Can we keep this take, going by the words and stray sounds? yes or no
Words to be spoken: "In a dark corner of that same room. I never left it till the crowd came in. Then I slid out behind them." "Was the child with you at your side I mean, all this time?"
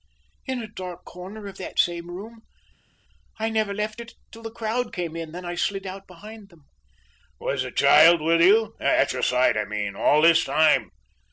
yes